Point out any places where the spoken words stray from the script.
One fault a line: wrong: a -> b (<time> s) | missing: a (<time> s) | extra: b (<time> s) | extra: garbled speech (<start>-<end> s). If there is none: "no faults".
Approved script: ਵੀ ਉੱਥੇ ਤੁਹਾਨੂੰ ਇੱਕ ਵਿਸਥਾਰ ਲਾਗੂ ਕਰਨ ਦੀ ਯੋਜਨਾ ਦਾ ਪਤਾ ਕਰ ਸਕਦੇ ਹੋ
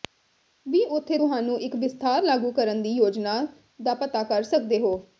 no faults